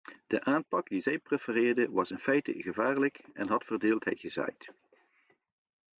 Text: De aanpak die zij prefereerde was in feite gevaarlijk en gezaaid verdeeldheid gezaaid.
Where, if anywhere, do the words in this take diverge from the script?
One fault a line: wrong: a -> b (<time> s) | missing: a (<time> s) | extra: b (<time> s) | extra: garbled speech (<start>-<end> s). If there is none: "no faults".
wrong: gezaaid -> had (3.5 s)